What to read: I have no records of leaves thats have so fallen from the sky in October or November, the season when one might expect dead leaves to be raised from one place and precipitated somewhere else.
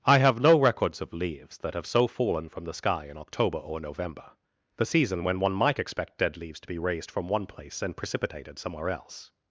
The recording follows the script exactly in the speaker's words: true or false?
false